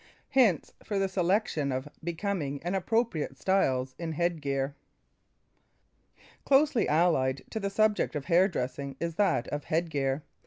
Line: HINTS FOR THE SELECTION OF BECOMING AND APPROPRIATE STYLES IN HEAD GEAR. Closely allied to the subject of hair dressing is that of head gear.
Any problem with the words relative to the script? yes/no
no